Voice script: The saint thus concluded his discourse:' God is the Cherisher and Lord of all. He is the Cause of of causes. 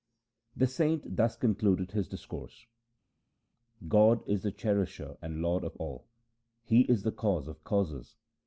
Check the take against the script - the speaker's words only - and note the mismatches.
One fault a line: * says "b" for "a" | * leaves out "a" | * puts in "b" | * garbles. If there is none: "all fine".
* leaves out "of"